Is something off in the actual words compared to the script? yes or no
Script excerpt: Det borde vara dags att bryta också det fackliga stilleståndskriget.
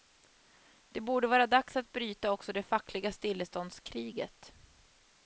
no